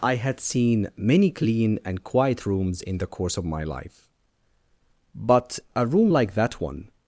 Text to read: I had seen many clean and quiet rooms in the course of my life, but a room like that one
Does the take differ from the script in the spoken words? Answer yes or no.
no